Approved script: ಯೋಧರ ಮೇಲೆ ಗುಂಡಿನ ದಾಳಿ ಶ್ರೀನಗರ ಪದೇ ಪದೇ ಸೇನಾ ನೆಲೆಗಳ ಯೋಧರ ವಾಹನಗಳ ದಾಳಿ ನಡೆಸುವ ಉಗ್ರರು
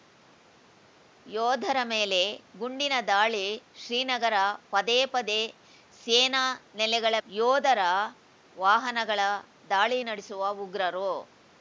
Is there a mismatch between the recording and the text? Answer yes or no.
no